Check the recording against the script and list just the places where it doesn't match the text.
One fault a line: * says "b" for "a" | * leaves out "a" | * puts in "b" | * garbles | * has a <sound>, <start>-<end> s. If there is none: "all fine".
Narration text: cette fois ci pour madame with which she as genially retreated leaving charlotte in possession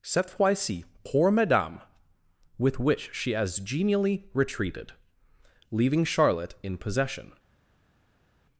all fine